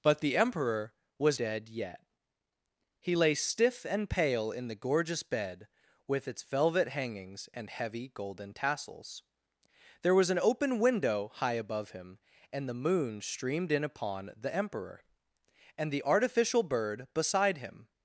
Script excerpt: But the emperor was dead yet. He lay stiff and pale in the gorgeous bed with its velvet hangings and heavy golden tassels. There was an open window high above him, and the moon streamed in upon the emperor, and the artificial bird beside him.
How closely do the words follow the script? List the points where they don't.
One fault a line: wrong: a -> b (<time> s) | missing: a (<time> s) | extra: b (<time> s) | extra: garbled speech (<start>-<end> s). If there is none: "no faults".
no faults